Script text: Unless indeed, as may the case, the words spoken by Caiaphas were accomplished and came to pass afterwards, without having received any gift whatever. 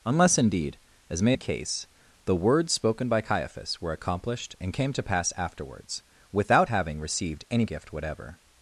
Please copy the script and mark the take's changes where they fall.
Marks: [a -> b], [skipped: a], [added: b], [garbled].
Unless indeed, as may the case, the words spoken by Caiaphas were accomplished and came to pass afterwards, without having received any gift whatever.